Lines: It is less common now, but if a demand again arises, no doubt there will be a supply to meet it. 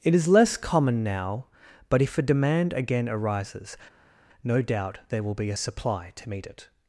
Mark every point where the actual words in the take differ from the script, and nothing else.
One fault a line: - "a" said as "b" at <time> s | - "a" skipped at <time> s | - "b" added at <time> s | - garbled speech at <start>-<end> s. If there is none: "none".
none